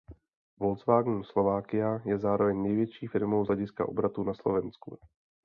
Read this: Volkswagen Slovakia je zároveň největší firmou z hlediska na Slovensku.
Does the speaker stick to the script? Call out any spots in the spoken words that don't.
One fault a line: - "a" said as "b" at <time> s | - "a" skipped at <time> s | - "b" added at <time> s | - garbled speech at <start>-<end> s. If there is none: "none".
- "obratu" added at 3.9 s